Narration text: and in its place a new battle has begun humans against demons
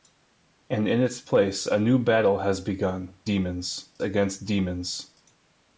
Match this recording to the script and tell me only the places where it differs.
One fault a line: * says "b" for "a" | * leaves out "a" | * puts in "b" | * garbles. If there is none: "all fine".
* says "demons" for "humans"